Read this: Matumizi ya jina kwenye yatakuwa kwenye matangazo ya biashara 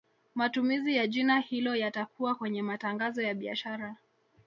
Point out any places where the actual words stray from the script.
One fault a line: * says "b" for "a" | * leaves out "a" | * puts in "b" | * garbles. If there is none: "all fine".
* says "hilo" for "kwenye"